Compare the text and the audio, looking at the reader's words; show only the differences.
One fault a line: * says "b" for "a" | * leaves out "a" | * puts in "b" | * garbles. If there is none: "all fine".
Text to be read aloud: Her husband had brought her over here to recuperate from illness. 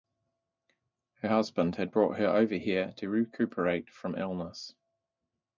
all fine